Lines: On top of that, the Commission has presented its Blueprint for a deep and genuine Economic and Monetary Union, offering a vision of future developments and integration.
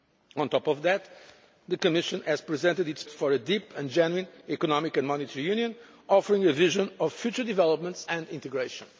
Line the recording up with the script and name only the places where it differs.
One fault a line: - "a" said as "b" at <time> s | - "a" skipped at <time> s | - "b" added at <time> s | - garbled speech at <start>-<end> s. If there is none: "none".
- "Blueprint" skipped at 3.0 s